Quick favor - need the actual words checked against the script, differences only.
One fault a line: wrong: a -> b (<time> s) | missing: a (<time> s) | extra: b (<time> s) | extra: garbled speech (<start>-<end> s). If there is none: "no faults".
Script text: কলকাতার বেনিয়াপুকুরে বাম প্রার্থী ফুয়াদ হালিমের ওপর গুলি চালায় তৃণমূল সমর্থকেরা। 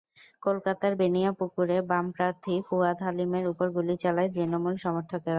no faults